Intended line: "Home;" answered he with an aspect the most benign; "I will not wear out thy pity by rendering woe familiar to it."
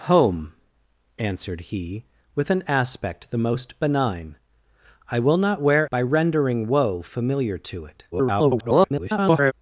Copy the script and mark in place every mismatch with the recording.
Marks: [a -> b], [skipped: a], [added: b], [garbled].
"Home;" answered he with an aspect the most benign; "I will not wear [skipped: out thy pity] by rendering woe familiar to it." [garbled]